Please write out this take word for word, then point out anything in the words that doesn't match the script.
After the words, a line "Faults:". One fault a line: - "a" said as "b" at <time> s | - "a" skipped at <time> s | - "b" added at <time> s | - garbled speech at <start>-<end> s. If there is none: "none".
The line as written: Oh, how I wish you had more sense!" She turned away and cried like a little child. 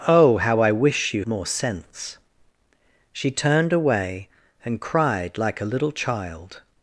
Oh, how I wish you more sense!" She turned away and cried like a little child.
Faults:
- "had" skipped at 1.2 s